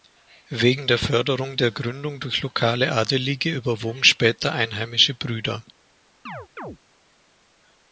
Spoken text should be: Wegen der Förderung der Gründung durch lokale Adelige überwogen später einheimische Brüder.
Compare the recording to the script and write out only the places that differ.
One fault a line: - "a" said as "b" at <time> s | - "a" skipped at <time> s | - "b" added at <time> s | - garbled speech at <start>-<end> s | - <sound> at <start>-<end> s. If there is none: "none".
- chirp at 6.3-6.8 s